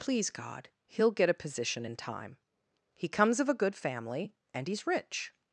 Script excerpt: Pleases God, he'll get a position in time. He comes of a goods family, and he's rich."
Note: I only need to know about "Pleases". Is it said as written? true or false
false